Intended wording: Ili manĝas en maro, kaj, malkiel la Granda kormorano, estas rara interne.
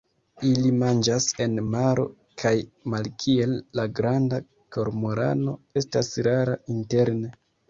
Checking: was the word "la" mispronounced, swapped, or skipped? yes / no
no